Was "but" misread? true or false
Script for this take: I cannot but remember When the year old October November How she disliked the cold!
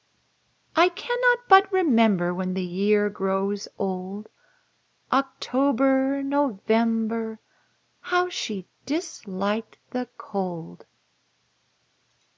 false